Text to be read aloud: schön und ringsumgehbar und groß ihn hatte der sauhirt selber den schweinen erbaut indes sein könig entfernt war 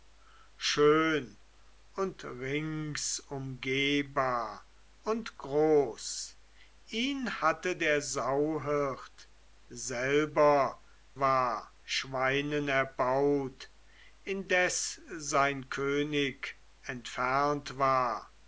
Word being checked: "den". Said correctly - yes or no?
no